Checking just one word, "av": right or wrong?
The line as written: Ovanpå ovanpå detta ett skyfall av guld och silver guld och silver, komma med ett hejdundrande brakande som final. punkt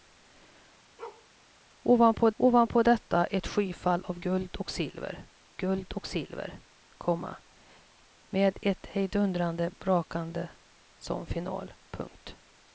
right